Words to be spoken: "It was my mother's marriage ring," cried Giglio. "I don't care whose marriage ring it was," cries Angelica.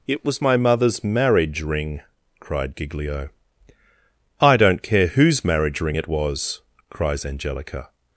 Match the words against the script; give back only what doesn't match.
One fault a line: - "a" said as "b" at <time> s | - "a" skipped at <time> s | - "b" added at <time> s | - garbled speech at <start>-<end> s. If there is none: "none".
none